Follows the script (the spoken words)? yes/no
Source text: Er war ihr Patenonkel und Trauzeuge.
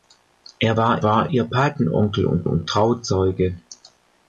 no